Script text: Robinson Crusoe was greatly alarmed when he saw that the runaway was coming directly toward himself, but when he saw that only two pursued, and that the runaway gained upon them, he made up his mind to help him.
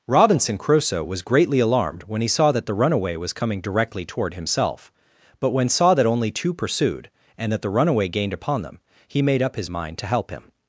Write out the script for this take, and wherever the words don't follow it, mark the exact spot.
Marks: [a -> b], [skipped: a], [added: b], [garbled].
Robinson Crusoe was greatly alarmed when he saw that the runaway was coming directly toward himself, but when [skipped: he] saw that only two pursued, and that the runaway gained upon them, he made up his mind to help him.